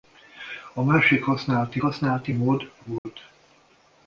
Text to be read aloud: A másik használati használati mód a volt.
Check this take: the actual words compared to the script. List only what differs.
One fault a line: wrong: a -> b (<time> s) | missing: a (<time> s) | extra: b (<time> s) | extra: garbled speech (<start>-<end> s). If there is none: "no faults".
no faults